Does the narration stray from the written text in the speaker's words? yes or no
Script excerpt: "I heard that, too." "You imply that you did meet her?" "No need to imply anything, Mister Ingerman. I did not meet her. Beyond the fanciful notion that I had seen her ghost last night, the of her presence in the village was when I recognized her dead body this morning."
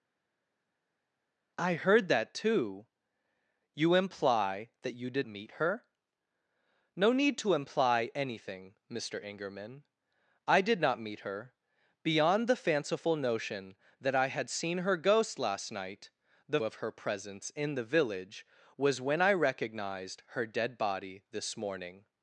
no